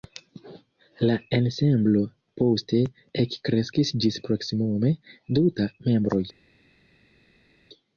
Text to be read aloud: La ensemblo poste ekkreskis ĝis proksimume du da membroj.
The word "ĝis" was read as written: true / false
true